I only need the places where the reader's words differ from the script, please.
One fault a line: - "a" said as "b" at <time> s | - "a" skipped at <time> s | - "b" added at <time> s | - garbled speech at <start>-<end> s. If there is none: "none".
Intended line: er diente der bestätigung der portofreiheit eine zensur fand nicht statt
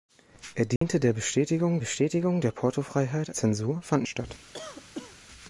- "bestätigung" added at 1.8 s
- "eine" skipped at 3.4 s
- "nicht" skipped at 4.0 s